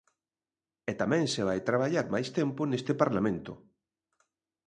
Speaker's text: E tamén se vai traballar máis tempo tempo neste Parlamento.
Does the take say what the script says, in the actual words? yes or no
no